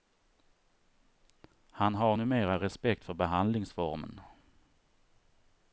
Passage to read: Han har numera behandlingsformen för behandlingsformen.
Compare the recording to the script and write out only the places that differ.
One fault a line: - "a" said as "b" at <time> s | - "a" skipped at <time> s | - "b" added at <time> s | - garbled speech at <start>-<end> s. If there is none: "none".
- "behandlingsformen" said as "respekt" at 2.6 s